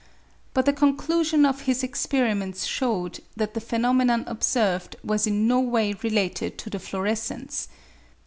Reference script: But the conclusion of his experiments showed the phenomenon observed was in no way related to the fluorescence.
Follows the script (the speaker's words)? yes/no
no